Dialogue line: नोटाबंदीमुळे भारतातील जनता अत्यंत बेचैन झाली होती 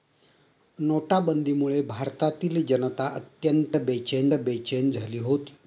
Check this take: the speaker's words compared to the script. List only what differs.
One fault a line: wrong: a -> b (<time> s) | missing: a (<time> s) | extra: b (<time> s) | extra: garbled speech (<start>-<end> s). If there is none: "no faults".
extra: बेचैन (4.3 s)